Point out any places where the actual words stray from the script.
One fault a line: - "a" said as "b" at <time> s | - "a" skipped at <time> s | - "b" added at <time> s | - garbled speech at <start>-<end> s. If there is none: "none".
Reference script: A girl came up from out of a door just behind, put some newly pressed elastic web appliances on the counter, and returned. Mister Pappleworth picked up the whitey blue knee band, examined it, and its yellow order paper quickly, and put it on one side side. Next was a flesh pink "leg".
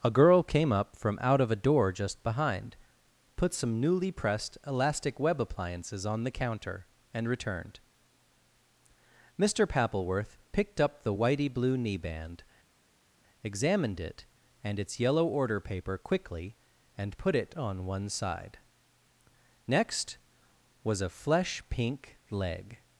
- "side" skipped at 18.6 s